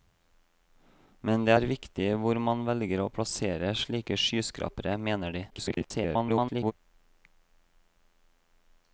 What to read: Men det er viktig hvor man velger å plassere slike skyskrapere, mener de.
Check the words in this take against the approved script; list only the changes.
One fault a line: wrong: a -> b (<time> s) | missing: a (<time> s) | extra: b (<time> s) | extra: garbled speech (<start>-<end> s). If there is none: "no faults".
extra: garbled speech (5.5-6.7 s)